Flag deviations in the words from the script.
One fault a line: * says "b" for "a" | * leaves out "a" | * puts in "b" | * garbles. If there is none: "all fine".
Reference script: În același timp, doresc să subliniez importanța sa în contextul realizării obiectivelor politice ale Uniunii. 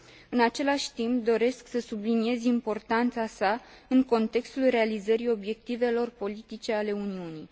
all fine